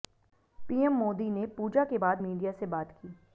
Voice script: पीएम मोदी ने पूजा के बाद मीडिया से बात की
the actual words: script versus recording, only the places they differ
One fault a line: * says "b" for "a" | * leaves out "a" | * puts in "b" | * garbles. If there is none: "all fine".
all fine